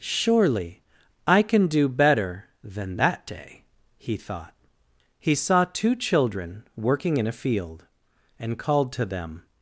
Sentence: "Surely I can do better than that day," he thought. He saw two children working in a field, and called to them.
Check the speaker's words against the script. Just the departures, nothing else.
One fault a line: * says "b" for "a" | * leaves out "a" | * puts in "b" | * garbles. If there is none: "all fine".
all fine